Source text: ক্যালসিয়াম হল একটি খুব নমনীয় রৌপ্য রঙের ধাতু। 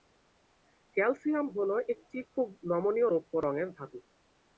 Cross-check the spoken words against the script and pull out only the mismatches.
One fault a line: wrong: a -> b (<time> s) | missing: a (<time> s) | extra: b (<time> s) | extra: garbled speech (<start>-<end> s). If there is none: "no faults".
no faults